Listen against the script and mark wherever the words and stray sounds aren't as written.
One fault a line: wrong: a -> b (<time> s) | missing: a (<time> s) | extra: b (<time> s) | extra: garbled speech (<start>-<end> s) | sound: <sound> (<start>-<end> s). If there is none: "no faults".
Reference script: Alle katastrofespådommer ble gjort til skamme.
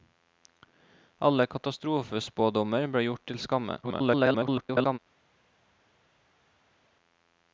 extra: garbled speech (3.8-5.0 s)